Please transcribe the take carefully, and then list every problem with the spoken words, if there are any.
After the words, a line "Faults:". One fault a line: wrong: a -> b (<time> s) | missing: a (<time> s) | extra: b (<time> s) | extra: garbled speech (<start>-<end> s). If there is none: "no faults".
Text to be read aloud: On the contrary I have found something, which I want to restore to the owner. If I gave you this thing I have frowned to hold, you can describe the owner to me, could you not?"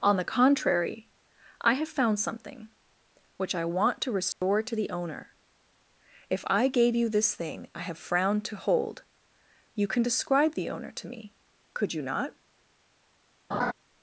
On the contrary I have found something, which I want to restore to the owner. If I gave you this thing I have frowned to hold, you can describe the owner to me, could you not?"
Faults:
no faults